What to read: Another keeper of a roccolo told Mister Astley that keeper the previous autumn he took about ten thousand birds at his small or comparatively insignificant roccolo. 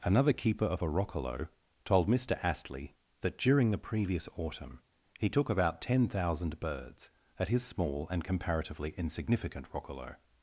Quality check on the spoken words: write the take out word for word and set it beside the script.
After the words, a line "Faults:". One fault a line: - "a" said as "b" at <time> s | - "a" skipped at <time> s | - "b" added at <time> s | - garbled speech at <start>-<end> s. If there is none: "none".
Another keeper of a roccolo told Mister Astley that during the previous autumn he took about ten thousand birds at his small and comparatively insignificant roccolo.
Faults:
- "keeper" said as "during" at 3.4 s
- "or" said as "and" at 8.1 s